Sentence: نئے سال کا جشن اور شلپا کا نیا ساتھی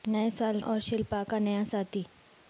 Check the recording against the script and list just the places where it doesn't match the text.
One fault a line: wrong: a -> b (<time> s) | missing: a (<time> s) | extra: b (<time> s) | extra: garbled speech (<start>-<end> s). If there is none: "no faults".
missing: کا جشن (0.6 s)